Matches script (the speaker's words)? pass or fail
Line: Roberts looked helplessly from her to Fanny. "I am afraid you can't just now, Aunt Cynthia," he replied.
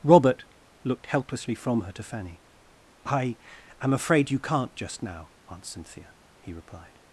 fail